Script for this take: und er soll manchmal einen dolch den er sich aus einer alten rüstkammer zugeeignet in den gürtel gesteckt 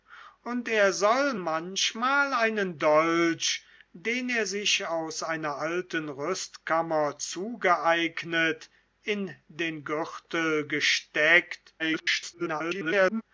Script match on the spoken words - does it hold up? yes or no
no